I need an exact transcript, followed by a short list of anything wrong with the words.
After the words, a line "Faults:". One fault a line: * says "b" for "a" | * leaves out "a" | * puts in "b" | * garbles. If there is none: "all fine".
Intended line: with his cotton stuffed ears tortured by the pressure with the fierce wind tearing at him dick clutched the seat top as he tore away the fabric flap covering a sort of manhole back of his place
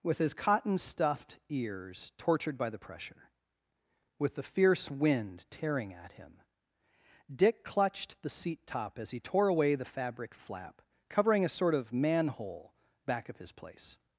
with his cotton stuffed ears tortured by the pressure with the fierce wind tearing at him dick clutched the seat top as he tore away the fabric flap covering a sort of manhole back of his place
Faults:
all fine